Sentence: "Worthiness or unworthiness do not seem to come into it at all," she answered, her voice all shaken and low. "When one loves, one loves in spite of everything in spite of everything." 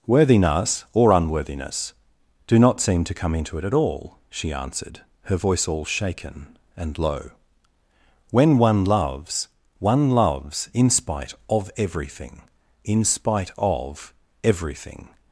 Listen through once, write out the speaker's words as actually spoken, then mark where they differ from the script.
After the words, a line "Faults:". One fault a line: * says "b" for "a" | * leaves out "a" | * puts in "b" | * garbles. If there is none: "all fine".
"Worthiness or unworthiness do not seem to come into it at all," she answered, her voice all shaken and low. "When one loves, one loves in spite of everything in spite of everything."
Faults:
all fine